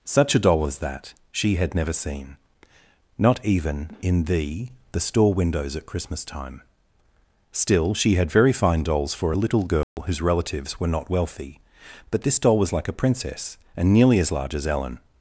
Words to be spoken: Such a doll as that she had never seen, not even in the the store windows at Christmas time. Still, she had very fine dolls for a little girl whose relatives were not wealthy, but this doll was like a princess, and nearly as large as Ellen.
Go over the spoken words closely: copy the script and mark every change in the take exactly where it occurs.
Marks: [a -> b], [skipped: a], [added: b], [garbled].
Such a doll as that she had never seen, not even in the the store windows at Christmas time. Still, she had very fine dolls for a little girl whose relatives were not wealthy, but this doll was like a princess, and nearly as large as Ellen.